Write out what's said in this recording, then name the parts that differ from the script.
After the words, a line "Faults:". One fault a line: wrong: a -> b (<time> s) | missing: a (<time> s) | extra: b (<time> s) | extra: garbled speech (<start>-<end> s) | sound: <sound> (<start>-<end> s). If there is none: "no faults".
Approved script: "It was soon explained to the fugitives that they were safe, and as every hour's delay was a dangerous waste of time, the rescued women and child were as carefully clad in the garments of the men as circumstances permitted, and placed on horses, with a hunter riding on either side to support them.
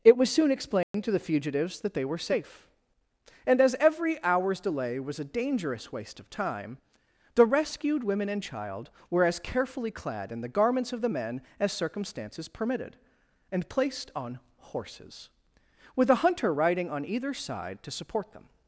"It was soon explained to the fugitives that they were safe, and as every hour's delay was a dangerous waste of time, the rescued women and child were as carefully clad in the garments of the men as circumstances permitted, and placed on horses, with a hunter riding on either side to support them.
Faults:
sound: dropout (0.8-0.9 s)